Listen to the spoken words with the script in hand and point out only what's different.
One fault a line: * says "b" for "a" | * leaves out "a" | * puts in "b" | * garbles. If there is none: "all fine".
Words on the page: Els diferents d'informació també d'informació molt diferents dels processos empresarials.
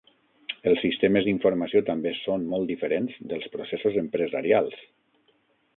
* says "sistemes" for "diferents"
* says "són" for "d'informació"